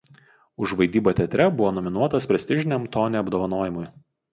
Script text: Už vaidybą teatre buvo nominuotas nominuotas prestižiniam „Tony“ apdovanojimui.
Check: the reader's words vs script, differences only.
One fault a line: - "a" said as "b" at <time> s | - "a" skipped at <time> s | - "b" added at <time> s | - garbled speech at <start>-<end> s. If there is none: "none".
- "nominuotas" skipped at 2.3 s